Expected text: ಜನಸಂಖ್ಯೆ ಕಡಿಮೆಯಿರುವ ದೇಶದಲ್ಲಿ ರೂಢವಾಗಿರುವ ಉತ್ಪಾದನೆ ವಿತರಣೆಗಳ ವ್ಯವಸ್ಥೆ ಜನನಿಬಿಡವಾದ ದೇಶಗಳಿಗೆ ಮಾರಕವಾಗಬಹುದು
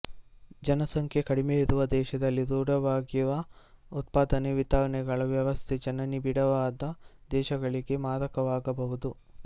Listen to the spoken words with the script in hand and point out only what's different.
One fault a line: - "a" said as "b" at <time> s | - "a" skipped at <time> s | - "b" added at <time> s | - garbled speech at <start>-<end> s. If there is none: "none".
none